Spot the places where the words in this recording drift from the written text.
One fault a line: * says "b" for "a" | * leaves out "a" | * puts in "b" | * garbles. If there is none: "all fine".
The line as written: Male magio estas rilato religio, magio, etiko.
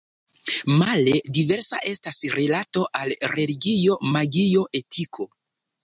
* says "diversa" for "magio"
* puts in "al"